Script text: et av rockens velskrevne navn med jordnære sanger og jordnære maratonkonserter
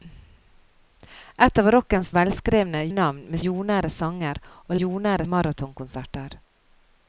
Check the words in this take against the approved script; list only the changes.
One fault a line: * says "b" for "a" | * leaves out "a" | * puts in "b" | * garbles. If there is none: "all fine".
all fine